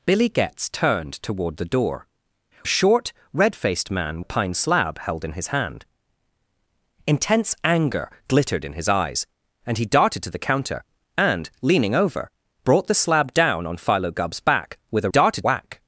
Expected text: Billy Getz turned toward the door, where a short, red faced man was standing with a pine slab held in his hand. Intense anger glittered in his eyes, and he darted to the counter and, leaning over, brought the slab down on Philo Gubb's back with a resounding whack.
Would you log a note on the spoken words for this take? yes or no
yes